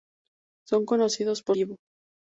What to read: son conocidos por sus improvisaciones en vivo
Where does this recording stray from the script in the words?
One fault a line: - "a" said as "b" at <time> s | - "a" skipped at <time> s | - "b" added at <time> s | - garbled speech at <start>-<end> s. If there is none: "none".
- "sus improvisaciones en" skipped at 1.6 s